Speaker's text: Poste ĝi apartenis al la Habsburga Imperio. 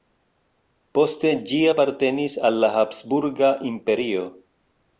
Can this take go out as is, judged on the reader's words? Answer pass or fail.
pass